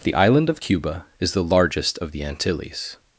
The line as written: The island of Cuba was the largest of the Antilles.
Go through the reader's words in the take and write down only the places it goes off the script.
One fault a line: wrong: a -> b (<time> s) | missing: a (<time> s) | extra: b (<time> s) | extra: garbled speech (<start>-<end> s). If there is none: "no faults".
wrong: was -> is (1.2 s)